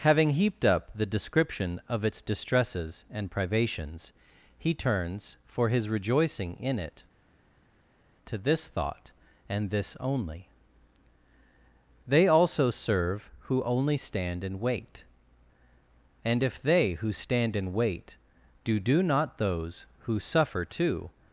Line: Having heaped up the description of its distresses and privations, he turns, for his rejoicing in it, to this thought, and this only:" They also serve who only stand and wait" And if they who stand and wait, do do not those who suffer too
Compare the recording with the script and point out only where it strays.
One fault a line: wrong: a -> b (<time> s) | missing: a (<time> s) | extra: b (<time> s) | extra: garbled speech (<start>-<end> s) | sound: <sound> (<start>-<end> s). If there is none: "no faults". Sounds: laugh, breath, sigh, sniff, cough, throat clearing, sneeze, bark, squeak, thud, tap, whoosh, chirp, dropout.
no faults